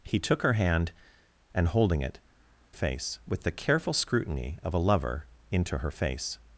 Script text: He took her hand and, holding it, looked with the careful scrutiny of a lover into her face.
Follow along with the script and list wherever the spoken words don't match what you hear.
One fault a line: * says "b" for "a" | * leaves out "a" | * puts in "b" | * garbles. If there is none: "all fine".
* says "face" for "looked"